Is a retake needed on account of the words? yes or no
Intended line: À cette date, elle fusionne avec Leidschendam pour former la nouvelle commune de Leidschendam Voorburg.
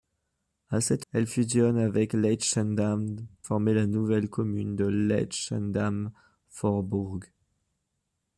yes